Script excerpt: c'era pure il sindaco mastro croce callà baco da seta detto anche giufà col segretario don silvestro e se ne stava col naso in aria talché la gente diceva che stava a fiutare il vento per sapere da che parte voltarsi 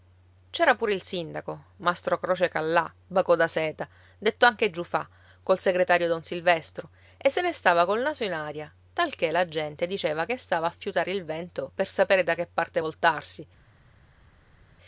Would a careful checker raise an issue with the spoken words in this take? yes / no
no